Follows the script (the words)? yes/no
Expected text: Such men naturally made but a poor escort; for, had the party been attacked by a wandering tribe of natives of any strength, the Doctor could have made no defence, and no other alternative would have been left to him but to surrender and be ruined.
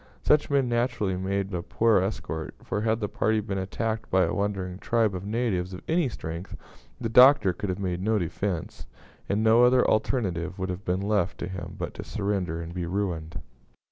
no